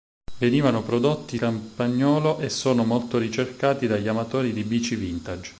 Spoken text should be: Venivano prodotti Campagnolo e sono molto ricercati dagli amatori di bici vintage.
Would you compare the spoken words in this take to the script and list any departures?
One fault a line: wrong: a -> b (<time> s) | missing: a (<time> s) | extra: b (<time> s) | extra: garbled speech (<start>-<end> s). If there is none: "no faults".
no faults